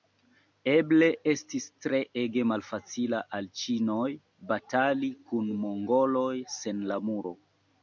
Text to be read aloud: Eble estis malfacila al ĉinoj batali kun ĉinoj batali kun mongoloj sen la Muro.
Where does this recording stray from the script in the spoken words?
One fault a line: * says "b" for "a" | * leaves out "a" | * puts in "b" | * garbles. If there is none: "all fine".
* puts in "treege"
* leaves out "ĉinoj batali kun"